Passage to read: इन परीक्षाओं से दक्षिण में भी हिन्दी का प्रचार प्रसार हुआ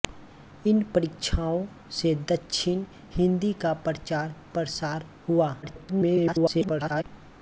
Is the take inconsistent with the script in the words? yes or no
yes